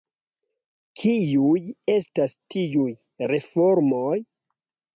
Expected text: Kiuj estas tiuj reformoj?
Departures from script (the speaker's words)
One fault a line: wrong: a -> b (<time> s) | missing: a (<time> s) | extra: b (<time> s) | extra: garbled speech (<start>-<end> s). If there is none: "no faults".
no faults